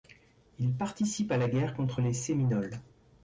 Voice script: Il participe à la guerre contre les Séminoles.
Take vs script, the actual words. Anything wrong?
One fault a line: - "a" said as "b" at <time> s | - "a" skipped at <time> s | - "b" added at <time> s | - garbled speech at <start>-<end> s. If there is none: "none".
none